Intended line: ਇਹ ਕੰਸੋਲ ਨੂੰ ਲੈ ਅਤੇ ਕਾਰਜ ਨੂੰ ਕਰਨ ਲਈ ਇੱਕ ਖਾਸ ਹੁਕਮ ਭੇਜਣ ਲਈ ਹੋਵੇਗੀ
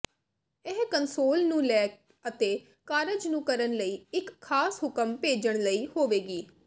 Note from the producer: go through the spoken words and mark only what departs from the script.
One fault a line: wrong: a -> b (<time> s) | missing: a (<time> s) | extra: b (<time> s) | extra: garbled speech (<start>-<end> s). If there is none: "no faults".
no faults